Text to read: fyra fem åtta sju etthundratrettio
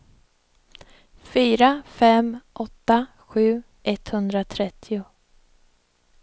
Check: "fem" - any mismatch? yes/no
no